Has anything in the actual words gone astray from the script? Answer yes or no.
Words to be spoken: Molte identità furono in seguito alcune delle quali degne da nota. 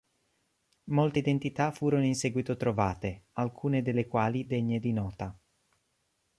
yes